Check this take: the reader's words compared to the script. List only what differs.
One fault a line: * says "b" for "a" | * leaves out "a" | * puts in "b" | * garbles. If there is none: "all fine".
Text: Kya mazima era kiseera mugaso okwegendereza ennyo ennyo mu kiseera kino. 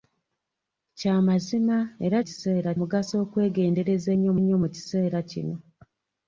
all fine